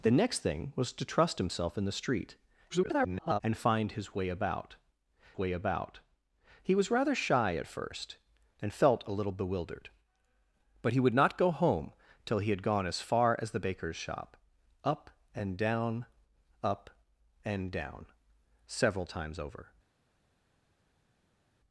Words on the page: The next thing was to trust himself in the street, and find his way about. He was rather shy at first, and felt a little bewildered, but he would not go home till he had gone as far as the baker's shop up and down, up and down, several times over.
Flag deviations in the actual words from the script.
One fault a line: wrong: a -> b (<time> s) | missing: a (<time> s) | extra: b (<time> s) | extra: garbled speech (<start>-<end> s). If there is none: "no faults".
extra: garbled speech (2.7-3.4 s)
extra: way about (5.4 s)